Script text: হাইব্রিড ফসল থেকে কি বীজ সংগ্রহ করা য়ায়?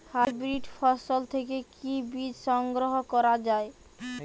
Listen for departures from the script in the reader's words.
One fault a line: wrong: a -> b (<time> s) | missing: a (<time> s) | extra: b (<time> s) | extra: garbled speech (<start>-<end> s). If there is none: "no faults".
no faults